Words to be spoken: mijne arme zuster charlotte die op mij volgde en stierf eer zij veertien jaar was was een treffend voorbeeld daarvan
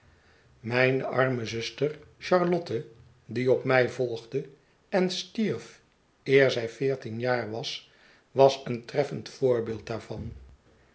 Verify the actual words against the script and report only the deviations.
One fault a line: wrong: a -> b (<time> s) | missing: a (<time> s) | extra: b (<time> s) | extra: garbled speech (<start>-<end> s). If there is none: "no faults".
no faults